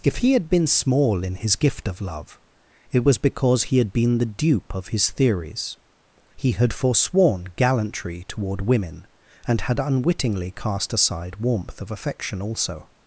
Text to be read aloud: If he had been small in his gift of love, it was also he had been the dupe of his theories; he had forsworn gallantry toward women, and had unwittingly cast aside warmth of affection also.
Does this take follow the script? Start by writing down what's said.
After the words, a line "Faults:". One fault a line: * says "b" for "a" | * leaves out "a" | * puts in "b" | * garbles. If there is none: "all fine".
If he had been small in his gift of love, it was because he had been the dupe of his theories; he had forsworn gallantry toward women, and had unwittingly cast aside warmth of affection also.
Faults:
* says "because" for "also"